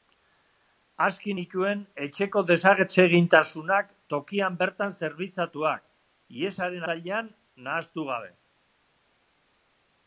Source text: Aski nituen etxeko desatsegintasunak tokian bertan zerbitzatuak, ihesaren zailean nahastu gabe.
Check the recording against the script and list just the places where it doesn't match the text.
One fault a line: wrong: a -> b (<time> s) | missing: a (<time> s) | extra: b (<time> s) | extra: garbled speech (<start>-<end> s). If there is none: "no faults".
no faults